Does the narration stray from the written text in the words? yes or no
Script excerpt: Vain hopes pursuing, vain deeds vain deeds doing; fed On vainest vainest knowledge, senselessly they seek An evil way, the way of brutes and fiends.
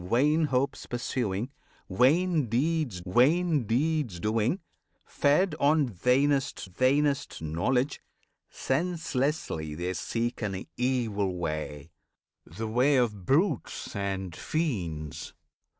no